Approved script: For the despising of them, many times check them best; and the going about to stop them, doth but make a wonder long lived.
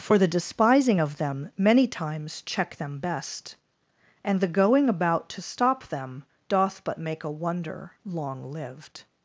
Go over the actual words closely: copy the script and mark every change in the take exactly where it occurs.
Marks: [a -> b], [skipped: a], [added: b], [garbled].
For the despising of them, many times check them best; and the going about to stop them, doth but make a wonder long lived.